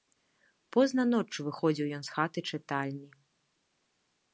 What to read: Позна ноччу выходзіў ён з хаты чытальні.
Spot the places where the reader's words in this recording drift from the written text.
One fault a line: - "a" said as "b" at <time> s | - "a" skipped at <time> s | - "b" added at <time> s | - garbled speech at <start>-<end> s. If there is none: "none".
none